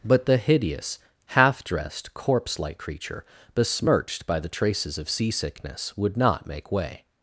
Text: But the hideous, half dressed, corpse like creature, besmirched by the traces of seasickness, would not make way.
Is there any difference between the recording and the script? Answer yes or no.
no